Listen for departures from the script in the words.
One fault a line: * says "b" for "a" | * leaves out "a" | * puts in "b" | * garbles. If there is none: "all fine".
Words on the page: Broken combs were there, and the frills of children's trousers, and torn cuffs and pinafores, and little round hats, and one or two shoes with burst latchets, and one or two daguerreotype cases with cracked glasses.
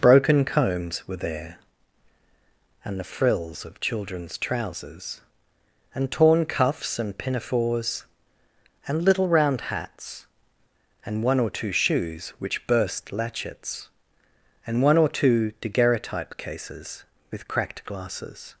* says "which" for "with"